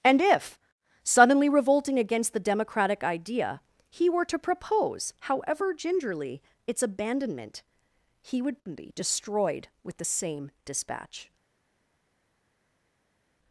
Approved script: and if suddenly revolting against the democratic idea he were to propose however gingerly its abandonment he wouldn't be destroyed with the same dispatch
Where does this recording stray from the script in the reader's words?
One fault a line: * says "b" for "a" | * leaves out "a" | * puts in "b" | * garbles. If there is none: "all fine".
* says "would" for "wouldn't"